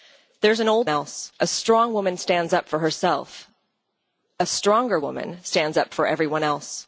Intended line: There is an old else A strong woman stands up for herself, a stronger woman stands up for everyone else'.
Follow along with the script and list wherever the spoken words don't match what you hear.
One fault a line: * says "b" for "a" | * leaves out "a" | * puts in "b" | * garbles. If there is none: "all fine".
all fine